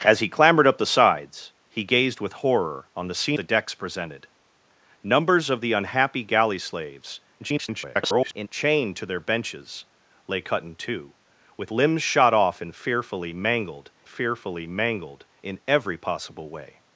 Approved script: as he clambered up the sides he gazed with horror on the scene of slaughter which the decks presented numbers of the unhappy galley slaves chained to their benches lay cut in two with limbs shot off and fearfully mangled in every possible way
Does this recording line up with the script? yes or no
no